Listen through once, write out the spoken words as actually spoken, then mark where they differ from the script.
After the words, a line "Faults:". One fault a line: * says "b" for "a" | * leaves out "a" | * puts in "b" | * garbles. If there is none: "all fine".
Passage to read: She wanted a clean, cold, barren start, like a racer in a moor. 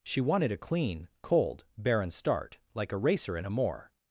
She wanted a clean, cold, barren start, like a racer in a moor.
Faults:
all fine